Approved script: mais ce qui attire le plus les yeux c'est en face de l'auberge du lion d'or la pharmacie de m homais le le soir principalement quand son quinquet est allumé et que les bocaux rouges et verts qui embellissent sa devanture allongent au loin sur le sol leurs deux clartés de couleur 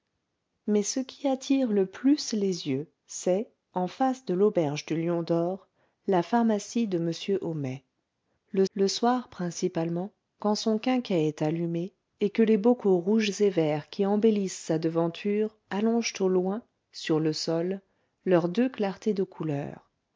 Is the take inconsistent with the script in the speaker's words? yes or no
no